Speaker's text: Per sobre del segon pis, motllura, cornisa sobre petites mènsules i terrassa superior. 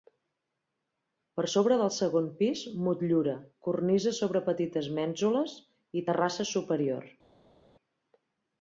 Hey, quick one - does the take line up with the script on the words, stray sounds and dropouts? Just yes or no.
yes